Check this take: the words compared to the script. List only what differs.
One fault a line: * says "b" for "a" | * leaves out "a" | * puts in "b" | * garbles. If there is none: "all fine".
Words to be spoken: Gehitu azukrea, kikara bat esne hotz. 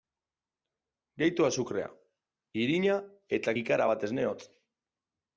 * puts in "irina eta"